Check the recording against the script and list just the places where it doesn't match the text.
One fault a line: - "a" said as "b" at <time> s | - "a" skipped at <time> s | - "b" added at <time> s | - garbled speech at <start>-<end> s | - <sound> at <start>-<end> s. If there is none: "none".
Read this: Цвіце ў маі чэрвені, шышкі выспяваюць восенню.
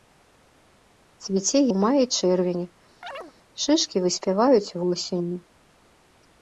- chirp at 3.0-3.3 s